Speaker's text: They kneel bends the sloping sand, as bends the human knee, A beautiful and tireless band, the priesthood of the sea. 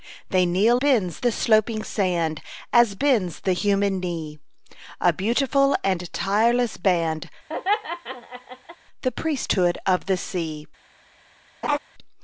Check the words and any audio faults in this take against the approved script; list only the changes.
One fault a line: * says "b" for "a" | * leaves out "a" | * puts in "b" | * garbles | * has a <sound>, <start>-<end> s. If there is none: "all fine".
* has a laugh, 7.5-8.8 s
* has a laugh, 11.6-11.8 s